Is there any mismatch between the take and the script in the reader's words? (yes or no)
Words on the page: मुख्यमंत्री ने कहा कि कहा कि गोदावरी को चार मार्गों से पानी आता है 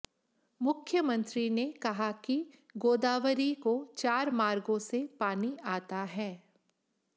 yes